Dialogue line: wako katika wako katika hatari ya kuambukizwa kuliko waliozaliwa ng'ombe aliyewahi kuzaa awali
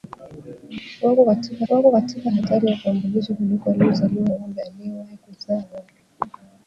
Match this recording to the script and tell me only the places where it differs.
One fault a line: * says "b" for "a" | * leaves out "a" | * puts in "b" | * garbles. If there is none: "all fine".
all fine